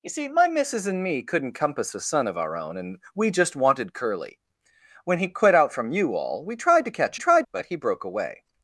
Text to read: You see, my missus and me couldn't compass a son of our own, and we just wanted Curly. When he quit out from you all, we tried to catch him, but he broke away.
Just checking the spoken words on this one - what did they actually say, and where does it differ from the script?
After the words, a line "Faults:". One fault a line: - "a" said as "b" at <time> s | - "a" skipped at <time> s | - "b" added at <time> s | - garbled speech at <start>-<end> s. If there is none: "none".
You see, my missus and me couldn't compass a son of our own, and we just wanted Curly. When he quit out from you all, we tried to catch tried, but he broke away.
Faults:
- "him" said as "tried" at 7.2 s